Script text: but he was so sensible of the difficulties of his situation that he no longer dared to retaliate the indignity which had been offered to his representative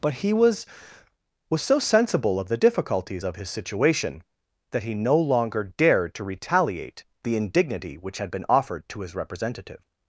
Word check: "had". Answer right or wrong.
right